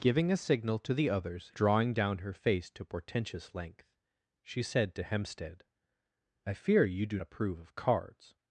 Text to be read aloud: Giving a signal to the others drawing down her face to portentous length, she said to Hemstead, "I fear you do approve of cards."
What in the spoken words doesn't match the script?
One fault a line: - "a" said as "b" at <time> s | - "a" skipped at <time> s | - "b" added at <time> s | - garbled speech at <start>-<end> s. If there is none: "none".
none